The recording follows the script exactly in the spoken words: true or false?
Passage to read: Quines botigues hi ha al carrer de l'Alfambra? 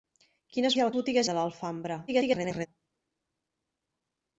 false